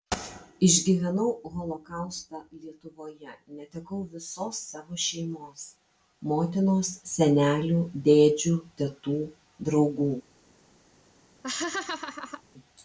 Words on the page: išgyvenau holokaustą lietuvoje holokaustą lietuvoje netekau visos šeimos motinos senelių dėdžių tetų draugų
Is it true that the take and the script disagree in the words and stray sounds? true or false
true